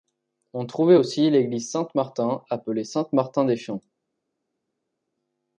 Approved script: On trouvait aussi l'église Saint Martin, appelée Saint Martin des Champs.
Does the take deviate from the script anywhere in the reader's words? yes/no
no